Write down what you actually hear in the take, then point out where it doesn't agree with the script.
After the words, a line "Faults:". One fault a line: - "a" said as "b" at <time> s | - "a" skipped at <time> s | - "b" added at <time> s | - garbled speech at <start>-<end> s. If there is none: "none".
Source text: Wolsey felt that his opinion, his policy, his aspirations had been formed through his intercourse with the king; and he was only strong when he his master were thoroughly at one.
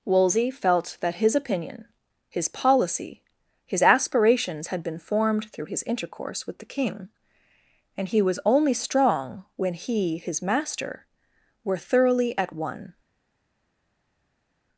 Wolsey felt that his opinion, his policy, his aspirations had been formed through his intercourse with the king; and he was only strong when he his master were thoroughly at one.
Faults:
none